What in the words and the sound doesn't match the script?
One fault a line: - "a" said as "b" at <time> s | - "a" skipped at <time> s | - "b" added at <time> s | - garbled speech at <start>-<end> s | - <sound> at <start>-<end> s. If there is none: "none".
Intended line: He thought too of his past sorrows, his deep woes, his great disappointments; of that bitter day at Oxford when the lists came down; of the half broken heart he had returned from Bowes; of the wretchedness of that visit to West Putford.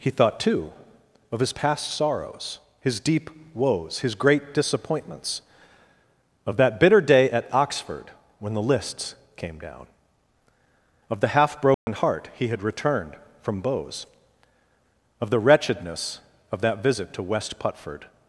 - dropout at 11.7-11.9 s